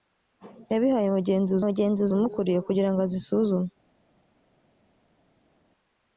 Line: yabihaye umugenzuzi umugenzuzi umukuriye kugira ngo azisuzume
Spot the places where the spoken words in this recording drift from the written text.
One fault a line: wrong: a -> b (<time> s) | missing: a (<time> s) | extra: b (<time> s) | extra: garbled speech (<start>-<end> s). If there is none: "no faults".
no faults